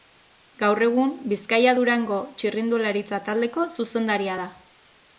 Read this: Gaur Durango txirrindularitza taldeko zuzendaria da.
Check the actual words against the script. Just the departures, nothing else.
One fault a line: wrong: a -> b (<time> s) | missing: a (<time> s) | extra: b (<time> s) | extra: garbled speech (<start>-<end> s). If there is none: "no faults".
extra: egun Bizkaia (0.8 s)